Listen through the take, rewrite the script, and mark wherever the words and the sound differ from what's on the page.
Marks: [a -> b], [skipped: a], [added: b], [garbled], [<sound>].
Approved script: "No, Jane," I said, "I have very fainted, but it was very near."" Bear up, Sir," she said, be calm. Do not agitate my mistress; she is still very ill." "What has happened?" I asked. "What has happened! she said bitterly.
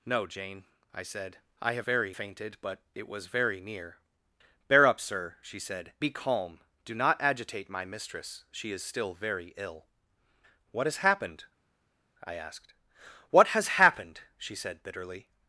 "No, Jane," I said, "I have very fainted, but it was very near."" Bear up, Sir," she said, be calm. Do not agitate my mistress; she is still very ill." "What has happened?" I asked. "What has happened! she said bitterly.